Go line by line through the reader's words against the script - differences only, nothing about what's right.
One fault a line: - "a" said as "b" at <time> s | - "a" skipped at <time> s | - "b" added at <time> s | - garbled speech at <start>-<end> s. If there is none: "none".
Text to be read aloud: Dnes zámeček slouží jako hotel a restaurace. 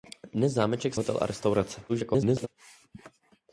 - "slouží jako" skipped at 0.9 s
- garbled speech at 1.9-2.5 s